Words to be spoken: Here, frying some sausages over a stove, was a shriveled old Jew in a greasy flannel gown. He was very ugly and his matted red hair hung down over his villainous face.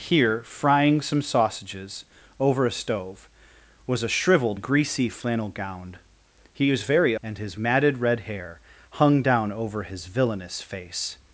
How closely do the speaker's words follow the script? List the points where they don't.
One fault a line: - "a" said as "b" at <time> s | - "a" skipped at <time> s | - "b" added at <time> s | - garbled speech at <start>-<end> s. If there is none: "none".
- "old Jew in" skipped at 4.6 s
- "ugly" skipped at 7.1 s